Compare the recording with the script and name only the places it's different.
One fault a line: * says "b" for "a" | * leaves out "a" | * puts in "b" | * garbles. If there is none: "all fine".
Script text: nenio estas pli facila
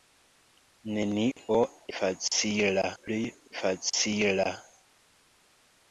* says "facila" for "estas"